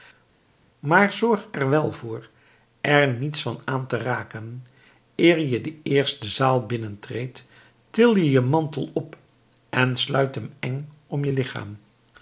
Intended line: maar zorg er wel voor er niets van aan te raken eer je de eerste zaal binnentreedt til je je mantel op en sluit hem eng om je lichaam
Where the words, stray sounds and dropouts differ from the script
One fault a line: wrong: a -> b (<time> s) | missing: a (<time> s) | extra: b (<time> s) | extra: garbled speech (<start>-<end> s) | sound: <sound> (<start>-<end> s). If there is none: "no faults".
no faults